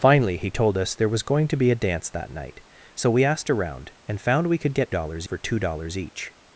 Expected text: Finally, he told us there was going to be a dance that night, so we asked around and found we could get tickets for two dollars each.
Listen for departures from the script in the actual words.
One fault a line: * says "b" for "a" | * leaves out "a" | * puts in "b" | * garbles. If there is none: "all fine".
* says "dollars" for "tickets"